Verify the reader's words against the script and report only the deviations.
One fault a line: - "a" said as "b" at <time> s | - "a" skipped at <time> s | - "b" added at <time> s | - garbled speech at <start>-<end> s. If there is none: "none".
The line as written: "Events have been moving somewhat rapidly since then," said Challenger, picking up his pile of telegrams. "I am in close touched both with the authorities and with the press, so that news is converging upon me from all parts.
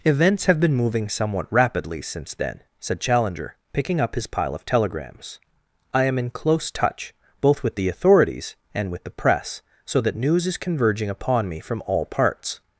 - "touched" said as "touch" at 6.7 s